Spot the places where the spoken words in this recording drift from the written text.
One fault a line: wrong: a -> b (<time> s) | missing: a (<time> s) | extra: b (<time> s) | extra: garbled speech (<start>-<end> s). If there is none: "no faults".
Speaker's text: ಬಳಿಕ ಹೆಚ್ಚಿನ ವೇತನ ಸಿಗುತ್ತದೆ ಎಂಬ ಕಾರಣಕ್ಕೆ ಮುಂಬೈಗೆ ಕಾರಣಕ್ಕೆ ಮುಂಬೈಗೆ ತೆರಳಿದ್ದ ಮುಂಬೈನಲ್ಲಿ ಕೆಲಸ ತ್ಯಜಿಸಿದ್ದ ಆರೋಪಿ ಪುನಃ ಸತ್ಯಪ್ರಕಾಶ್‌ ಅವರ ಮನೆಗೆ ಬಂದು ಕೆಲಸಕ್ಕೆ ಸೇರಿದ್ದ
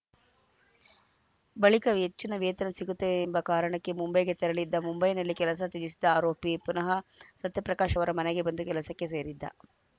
missing: ಕಾರಣಕ್ಕೆ ಮುಂಬೈಗೆ (4.4 s)